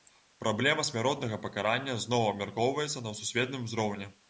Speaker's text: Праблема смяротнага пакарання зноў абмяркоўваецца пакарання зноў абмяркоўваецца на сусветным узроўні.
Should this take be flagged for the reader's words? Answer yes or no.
yes